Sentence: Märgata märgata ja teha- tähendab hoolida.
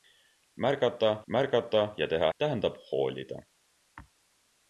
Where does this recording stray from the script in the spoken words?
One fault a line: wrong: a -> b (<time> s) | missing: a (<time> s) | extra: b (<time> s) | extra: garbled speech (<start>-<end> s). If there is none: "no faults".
no faults